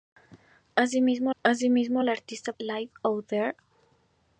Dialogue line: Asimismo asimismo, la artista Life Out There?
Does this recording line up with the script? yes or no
yes